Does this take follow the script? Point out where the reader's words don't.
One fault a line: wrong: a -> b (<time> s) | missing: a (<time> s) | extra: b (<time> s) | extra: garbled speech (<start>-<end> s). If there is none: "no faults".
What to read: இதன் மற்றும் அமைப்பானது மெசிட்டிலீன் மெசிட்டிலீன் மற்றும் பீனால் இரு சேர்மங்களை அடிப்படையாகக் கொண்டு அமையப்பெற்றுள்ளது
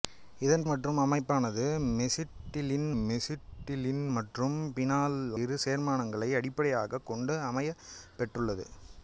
no faults